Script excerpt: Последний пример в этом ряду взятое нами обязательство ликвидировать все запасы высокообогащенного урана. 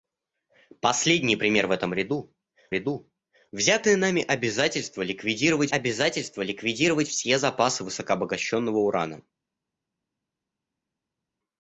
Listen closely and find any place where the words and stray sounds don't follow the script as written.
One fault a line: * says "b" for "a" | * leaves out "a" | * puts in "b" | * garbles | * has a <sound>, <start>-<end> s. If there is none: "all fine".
* puts in "ряду"
* puts in "обязательство ликвидировать"